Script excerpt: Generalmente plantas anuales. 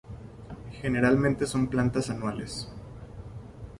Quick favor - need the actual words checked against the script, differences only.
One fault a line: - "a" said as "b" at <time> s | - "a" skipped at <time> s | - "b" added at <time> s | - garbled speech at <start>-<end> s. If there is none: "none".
- "son" added at 1.4 s